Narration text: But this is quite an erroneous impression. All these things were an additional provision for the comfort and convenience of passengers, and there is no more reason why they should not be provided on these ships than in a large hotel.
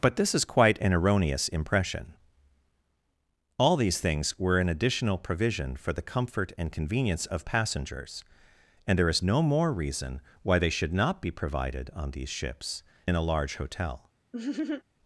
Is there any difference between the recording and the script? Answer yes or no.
yes